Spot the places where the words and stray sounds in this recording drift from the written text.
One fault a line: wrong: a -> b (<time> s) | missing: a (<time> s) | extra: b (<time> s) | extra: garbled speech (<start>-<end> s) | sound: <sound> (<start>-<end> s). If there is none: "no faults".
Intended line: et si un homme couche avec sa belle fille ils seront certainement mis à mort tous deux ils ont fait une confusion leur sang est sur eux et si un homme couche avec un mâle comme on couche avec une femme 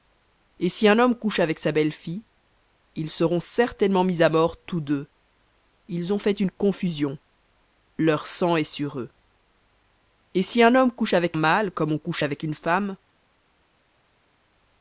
missing: un (11.4 s)